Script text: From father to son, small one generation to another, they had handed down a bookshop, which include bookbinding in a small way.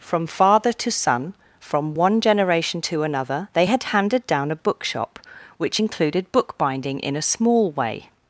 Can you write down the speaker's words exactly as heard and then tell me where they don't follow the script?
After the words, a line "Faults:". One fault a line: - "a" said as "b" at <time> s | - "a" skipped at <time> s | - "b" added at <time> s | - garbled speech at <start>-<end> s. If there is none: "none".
From father to son, from one generation to another, they had handed down a bookshop, which included bookbinding in a small way.
Faults:
- "small" said as "from" at 1.6 s
- "include" said as "included" at 5.8 s